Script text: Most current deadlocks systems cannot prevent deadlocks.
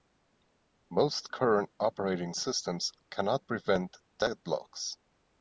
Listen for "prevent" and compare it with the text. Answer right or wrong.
right